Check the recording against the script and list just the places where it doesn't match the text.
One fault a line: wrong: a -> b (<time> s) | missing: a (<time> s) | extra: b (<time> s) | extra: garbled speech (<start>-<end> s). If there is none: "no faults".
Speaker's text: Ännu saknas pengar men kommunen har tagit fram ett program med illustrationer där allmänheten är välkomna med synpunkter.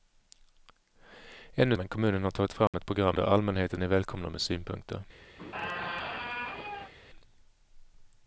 missing: saknas pengar (1.8 s)
missing: med illustrationer (3.2 s)